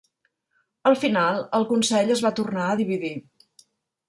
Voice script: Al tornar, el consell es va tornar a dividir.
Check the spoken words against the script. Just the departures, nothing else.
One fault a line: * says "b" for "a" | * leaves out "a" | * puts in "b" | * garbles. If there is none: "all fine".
* says "final" for "tornar"